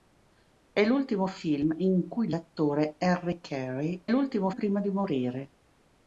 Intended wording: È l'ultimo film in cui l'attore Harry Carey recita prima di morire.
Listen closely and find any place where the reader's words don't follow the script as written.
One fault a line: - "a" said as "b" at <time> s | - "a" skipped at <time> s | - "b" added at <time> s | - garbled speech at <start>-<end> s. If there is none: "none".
- "recita" said as "l'ultimo" at 4.1 s